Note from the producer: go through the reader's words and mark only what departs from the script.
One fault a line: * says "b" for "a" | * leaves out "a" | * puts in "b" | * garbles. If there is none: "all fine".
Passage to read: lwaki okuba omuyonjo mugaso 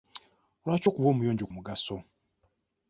all fine